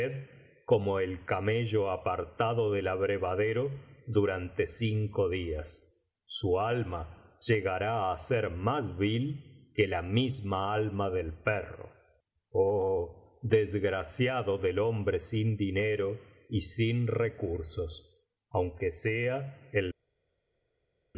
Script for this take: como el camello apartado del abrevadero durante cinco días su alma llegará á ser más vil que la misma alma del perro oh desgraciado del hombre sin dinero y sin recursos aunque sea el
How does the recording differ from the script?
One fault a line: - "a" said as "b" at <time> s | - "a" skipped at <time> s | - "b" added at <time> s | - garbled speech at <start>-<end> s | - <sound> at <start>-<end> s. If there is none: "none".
none